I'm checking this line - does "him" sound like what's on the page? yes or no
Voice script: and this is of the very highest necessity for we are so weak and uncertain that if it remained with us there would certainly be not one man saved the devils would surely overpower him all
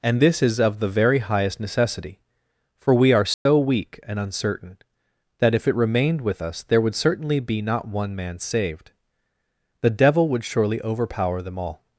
no